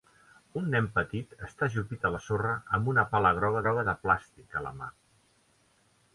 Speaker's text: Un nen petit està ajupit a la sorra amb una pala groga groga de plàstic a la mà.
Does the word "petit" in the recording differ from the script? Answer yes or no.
no